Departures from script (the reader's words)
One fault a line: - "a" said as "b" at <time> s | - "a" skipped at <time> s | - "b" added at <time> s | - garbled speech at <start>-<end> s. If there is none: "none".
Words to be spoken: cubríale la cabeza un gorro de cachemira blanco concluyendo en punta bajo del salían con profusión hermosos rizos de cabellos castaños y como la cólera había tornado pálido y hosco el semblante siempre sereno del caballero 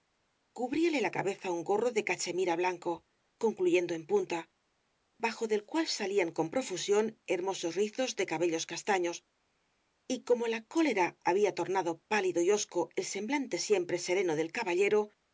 - "cual" added at 5.7 s